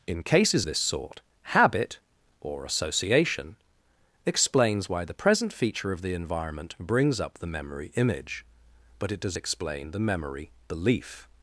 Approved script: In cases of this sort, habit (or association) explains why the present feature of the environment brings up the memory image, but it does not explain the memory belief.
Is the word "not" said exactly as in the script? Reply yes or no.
no